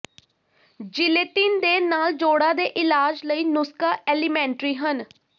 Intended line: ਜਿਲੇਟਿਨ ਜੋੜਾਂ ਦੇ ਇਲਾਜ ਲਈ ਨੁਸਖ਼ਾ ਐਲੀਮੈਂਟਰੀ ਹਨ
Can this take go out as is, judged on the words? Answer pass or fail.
fail